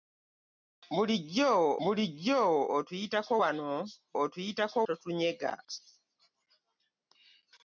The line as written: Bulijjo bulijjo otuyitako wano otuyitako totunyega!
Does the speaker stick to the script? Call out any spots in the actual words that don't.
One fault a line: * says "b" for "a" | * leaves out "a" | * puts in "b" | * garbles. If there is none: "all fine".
all fine